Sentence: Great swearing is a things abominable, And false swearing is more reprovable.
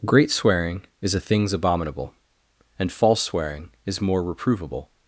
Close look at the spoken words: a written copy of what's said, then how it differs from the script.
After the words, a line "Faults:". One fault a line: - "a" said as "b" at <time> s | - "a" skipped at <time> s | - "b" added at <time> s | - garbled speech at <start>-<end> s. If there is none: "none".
Great swearing is a things abominable, And false swearing is more reprovable.
Faults:
none